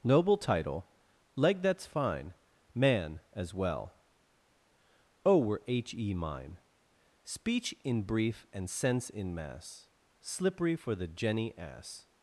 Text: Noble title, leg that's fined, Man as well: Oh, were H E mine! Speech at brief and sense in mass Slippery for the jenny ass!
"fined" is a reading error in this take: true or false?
true